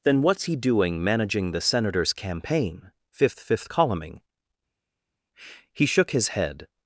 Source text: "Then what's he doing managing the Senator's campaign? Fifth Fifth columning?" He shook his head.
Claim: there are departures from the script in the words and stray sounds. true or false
false